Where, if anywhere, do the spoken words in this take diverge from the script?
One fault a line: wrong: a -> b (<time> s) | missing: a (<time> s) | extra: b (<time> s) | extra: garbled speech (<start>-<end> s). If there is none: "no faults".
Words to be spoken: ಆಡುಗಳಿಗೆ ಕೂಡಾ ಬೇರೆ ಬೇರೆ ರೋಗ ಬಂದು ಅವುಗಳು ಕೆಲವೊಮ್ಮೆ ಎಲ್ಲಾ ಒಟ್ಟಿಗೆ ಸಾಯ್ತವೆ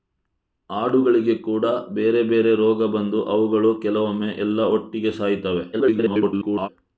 extra: garbled speech (5.7-6.7 s)